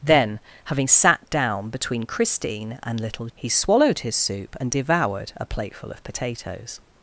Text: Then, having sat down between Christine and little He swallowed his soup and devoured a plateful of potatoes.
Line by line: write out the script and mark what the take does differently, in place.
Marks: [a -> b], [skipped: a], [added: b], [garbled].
Then, having sat down between Christine and little He swallowed his soup and devoured a plateful of potatoes.